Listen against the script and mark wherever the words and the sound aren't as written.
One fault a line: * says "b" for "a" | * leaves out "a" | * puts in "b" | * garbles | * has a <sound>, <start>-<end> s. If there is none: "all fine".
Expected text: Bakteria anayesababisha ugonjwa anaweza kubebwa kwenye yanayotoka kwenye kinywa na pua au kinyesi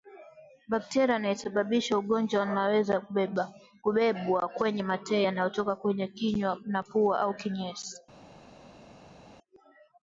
* puts in "mate"